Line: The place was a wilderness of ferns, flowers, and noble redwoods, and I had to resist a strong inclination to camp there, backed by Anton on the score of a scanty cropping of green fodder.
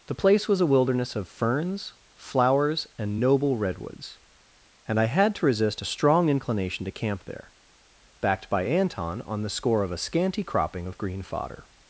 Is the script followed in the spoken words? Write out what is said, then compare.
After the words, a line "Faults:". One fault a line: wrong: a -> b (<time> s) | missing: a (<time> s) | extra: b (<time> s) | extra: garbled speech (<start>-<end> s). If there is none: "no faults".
The place was a wilderness of ferns, flowers, and noble redwoods, and I had to resist a strong inclination to camp there, backed by Anton on the score of a scanty cropping of green fodder.
Faults:
no faults